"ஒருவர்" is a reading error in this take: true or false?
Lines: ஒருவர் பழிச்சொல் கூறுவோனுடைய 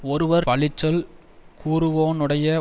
false